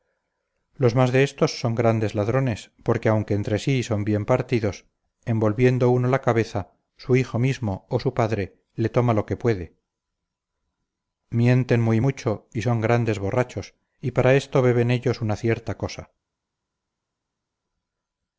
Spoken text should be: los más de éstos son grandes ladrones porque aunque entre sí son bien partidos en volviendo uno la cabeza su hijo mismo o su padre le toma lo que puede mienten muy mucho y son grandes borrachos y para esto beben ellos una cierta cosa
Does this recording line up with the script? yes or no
yes